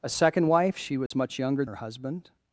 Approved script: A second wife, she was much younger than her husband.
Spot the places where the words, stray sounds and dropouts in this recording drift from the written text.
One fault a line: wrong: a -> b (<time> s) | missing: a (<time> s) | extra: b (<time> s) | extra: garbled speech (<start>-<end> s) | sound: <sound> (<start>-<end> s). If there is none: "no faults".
sound: dropout (1.1-1.1 s)
missing: than (1.7 s)